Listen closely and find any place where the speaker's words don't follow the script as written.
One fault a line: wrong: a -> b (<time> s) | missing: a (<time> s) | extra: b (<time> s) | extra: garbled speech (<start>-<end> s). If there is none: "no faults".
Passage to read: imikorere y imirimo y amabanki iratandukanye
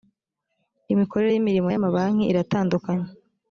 no faults